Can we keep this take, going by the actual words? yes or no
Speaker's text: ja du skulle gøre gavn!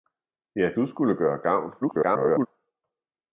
no